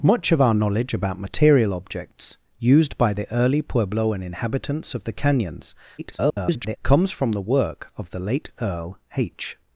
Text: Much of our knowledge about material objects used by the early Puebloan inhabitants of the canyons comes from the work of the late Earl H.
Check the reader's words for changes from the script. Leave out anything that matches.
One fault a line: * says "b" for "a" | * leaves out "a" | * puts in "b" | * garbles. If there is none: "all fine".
* garbles